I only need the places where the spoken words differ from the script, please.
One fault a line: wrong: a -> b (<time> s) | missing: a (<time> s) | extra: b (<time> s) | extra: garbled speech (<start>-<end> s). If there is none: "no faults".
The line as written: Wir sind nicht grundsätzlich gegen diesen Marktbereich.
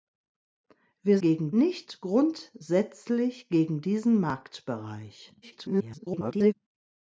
wrong: sind -> gegen (1.2 s)
extra: garbled speech (5.4-6.5 s)